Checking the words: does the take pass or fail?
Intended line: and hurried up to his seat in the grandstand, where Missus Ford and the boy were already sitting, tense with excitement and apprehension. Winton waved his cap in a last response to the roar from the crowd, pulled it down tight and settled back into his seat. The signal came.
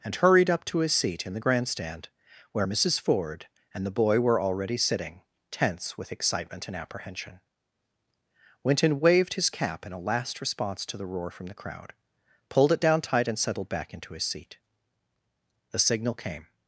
pass